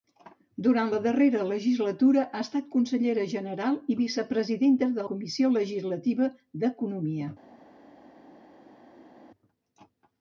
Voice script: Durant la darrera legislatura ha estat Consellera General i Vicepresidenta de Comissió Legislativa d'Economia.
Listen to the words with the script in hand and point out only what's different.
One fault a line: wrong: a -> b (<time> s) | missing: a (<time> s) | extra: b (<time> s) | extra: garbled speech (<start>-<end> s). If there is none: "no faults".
no faults